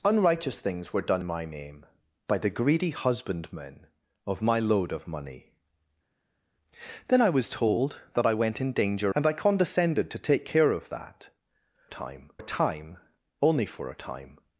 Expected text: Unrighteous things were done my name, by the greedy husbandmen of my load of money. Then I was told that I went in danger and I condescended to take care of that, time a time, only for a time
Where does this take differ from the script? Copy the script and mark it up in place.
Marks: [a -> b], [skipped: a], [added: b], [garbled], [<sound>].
Unrighteous things were done my name, by the greedy husbandmen of my load of money. Then I was told that I went in danger and I condescended to take care of that, time a time, only for a time